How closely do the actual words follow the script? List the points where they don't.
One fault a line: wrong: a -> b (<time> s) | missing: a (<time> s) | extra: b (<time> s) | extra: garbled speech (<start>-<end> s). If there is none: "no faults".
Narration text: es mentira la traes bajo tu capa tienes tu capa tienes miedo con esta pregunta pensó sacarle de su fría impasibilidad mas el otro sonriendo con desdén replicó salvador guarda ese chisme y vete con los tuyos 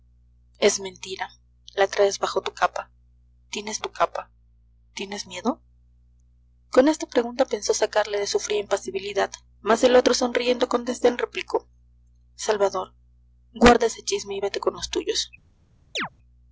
no faults